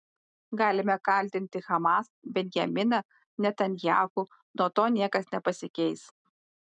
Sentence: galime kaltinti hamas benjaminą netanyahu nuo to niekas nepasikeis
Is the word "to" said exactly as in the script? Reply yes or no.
yes